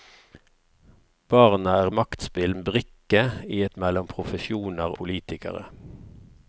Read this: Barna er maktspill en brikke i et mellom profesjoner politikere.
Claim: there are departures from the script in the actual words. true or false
false